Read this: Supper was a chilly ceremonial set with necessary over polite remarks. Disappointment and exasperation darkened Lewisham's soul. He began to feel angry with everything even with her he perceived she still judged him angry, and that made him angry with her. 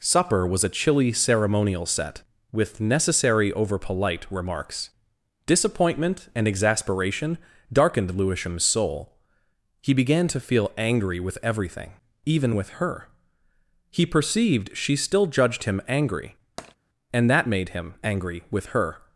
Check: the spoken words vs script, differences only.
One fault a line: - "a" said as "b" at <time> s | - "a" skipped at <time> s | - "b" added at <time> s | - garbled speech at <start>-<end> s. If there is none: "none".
none